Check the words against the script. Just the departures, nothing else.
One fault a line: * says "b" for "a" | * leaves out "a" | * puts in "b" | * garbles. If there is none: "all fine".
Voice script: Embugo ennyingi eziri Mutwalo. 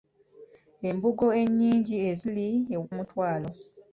all fine